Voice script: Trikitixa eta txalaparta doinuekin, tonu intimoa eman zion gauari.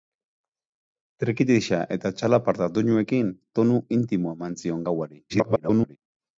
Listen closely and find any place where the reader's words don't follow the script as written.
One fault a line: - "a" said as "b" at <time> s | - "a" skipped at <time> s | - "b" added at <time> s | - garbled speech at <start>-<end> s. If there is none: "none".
- garbled speech at 5.3-6.0 s